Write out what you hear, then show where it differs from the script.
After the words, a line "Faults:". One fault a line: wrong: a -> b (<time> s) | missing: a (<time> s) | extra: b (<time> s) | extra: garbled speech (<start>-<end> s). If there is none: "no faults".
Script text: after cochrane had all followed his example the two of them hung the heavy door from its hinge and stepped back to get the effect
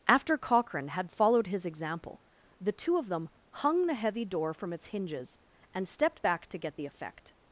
after cochrane had followed his example the two of them hung the heavy door from its hinges and stepped back to get the effect
Faults:
missing: all (1.1 s)
wrong: hinge -> hinges (4.9 s)